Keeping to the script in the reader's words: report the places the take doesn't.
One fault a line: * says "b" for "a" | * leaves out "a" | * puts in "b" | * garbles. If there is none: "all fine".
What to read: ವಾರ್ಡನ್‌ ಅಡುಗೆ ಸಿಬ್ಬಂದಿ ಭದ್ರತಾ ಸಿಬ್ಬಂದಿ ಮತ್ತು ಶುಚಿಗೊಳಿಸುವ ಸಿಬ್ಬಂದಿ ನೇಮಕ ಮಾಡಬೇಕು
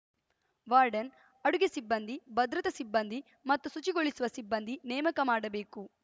all fine